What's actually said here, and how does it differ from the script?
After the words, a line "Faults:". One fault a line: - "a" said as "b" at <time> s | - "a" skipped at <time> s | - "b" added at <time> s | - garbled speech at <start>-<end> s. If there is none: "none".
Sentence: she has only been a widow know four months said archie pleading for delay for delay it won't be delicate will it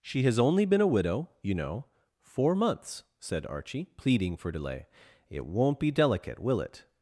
she has only been a widow you know four months said archie pleading for delay it won't be delicate will it
Faults:
- "you" added at 1.4 s
- "for delay" skipped at 4.9 s